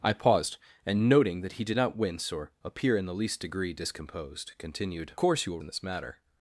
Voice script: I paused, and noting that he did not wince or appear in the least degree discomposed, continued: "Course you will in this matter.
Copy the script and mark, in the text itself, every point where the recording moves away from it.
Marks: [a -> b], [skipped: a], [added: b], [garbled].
I paused, and noting that he did not wince or appear in the least degree discomposed, continued: "Course you will in this matter.